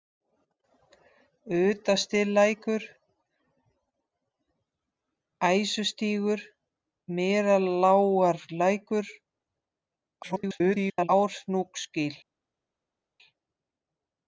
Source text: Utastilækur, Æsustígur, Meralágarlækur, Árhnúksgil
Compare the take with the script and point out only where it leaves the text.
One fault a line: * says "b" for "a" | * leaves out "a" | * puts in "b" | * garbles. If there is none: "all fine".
* garbles